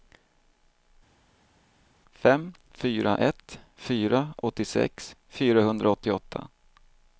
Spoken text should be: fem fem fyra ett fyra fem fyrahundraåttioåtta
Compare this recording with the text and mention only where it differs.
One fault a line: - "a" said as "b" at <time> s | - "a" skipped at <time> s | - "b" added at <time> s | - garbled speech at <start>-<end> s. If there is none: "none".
- "fem" skipped at 2.5 s
- "fem" said as "åttiosex" at 4.4 s